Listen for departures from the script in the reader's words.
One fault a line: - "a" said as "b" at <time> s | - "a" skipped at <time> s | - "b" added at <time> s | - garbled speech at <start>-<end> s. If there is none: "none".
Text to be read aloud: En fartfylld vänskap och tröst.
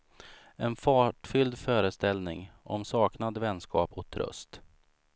- "föreställning om saknad" added at 1.6 s